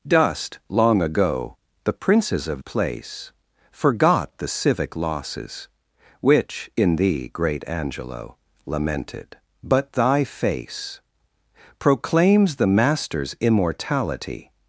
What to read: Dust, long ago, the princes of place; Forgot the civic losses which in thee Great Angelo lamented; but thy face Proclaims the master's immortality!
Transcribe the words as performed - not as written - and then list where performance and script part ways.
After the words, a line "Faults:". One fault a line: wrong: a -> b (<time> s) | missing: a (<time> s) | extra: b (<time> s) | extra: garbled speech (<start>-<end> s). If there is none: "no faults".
Dust, long ago, the princes of place; Forgot the civic losses which in thee Great Angelo lamented; but thy face Proclaims the master's immortality!
Faults:
no faults